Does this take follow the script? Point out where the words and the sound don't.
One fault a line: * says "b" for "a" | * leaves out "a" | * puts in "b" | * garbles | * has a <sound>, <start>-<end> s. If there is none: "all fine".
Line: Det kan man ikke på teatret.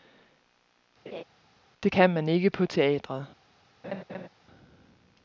* has a laugh, 1.1-1.2 s
* has a laugh, 3.8-4.3 s